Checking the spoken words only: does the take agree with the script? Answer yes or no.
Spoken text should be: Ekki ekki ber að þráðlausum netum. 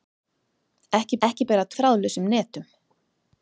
yes